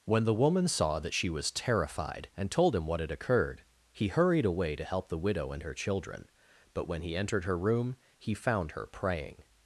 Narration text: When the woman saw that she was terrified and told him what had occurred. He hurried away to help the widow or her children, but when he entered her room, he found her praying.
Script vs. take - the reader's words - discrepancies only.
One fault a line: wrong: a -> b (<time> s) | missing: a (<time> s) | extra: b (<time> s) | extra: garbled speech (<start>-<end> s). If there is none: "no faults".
wrong: or -> and (5.5 s)